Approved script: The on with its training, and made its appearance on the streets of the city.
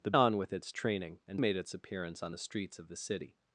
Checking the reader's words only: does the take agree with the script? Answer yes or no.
yes